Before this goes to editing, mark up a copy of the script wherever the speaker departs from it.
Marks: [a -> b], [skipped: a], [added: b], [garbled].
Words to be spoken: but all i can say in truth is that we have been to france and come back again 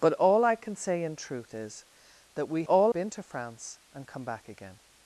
but all i can say in truth is that we [have -> all] been to france and come back again